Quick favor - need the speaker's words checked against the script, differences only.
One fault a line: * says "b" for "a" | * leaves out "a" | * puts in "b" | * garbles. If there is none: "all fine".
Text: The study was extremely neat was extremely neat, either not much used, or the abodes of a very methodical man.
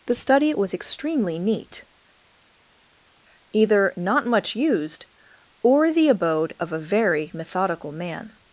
* leaves out "was extremely neat"
* says "abode" for "abodes"